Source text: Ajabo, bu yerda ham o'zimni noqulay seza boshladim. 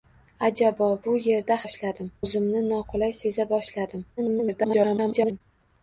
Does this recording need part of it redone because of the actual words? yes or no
yes